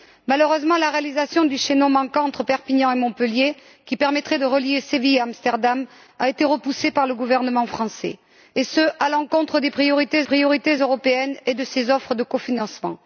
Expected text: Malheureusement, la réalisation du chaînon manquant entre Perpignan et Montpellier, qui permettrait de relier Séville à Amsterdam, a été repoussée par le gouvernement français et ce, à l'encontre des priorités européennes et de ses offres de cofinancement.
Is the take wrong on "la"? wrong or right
right